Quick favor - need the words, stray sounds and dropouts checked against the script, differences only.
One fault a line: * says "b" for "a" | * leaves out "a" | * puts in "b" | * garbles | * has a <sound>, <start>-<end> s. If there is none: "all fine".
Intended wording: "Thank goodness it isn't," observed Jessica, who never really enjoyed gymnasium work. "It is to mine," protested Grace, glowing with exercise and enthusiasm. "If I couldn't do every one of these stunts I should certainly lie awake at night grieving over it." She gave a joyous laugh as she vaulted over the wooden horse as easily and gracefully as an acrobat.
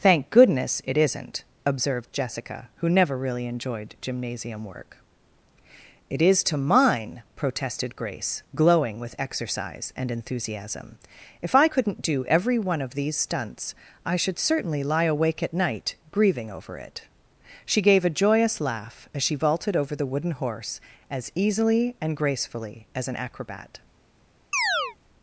* has a chirp, 24.5-25.0 s